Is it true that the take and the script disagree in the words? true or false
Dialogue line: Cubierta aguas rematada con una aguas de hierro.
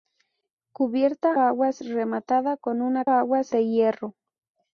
false